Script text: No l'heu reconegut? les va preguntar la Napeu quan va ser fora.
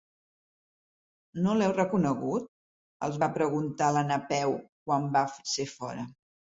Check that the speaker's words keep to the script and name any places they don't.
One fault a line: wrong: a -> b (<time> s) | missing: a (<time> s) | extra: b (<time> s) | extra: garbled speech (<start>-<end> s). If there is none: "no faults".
wrong: les -> els (3.1 s)